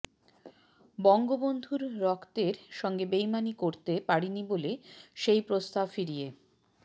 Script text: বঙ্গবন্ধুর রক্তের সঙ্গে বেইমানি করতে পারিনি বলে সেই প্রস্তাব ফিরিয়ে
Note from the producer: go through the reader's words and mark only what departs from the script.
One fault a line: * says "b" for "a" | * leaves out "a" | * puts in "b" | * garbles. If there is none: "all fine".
all fine